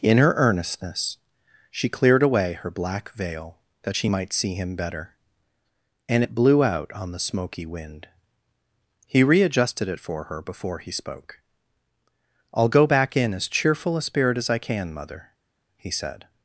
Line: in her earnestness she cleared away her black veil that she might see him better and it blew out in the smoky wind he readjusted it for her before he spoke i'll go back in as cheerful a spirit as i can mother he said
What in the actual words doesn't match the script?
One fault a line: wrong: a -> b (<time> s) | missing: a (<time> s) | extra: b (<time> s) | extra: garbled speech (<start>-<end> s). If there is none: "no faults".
wrong: in -> on (6.9 s)